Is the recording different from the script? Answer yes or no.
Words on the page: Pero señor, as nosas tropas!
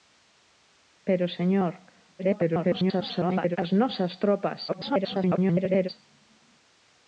yes